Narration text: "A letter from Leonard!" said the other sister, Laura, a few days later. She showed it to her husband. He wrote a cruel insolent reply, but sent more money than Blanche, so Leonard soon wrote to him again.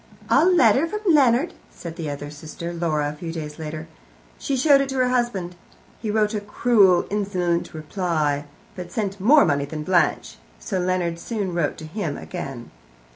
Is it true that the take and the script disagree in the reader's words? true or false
false